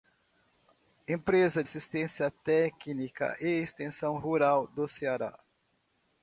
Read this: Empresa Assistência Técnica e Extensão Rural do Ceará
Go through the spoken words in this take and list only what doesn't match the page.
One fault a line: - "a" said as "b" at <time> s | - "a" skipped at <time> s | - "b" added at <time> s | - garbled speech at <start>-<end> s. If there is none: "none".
none